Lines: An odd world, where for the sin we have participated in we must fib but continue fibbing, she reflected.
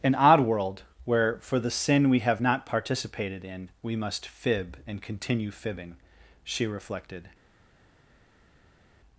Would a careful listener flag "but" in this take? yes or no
yes